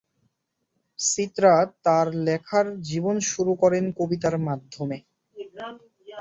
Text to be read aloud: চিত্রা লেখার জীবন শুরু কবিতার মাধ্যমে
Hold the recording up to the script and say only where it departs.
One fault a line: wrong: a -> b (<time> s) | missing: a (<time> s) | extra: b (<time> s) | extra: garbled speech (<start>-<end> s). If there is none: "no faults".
extra: তার (1.9 s)
extra: করেন (3.6 s)